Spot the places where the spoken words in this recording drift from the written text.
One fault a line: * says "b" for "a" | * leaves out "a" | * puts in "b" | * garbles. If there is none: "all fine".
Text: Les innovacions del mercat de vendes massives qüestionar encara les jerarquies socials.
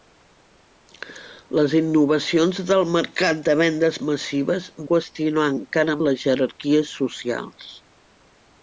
all fine